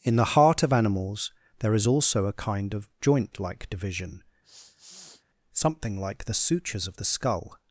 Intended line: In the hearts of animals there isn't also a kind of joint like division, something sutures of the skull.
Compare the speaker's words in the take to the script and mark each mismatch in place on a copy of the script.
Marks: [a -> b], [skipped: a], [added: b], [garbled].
In the [hearts -> heart] of animals there [isn't -> is] also a kind of joint like division, something [added: like the] sutures of the skull.